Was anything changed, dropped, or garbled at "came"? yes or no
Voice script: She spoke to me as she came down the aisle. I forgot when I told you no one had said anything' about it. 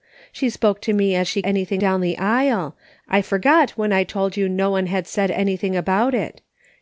yes